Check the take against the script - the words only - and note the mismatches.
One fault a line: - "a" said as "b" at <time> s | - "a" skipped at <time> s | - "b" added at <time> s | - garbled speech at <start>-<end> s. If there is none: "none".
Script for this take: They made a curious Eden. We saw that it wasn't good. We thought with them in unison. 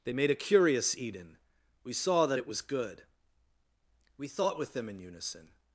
- "wasn't" said as "was" at 2.5 s